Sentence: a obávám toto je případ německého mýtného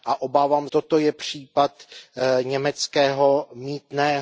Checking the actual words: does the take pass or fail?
pass